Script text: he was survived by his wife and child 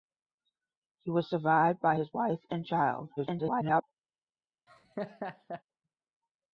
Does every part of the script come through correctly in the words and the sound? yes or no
no